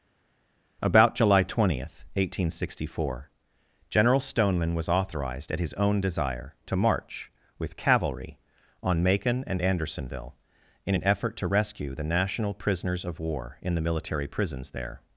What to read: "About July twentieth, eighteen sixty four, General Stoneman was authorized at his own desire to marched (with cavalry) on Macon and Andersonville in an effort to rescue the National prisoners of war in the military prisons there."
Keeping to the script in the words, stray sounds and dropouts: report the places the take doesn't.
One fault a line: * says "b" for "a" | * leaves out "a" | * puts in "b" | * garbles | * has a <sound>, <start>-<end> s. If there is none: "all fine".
* says "march" for "marched"